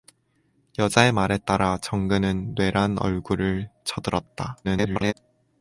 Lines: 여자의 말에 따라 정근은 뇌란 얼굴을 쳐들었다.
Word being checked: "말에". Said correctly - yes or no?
yes